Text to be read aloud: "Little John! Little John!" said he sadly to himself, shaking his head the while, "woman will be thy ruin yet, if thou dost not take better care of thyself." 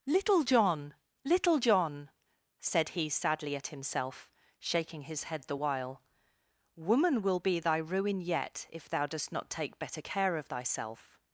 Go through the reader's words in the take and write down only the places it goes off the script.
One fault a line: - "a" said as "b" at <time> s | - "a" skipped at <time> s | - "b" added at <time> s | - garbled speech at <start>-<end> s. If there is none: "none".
- "to" said as "at" at 3.5 s